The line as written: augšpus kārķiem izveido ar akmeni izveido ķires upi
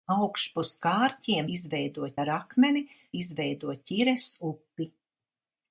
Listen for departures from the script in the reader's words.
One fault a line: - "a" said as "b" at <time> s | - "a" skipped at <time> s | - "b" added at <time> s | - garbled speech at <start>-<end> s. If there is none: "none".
none